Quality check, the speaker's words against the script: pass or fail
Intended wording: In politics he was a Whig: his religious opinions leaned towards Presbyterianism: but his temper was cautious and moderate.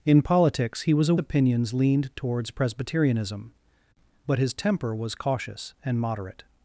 fail